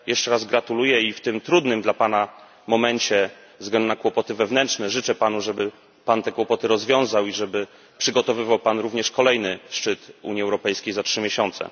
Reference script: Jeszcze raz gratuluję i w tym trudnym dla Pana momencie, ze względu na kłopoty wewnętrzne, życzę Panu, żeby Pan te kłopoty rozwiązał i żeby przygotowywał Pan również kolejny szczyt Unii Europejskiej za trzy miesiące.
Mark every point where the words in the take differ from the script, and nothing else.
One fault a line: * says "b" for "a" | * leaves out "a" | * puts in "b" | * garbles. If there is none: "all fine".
all fine